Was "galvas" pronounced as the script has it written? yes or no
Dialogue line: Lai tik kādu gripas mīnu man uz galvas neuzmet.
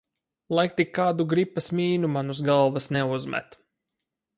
yes